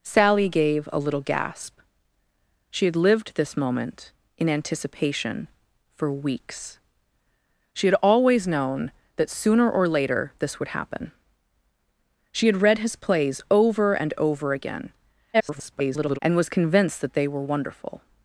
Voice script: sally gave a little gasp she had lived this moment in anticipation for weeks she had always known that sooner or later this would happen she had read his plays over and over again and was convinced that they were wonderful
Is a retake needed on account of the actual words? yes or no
yes